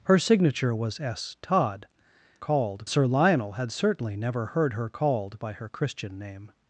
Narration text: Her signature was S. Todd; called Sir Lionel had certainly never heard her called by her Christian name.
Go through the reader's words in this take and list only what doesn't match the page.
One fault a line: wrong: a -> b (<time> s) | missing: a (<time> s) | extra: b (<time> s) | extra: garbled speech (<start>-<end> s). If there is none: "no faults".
no faults